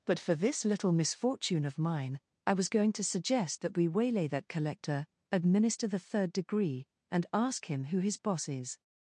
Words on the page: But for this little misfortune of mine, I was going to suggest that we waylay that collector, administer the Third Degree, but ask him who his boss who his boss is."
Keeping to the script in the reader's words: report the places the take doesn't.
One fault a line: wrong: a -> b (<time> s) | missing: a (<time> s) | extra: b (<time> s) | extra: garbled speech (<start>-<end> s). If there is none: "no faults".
wrong: but -> and (7.1 s)
missing: who his boss (8.5 s)